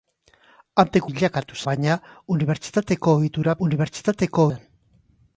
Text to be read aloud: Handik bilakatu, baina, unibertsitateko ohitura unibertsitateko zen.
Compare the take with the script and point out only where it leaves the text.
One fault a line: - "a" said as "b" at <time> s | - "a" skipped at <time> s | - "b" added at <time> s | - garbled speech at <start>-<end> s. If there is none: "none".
none